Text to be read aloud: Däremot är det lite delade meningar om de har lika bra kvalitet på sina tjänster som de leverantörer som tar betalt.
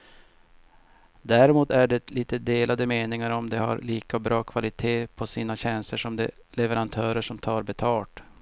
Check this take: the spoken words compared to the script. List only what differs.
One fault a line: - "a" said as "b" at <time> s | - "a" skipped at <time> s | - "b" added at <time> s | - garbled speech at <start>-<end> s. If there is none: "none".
none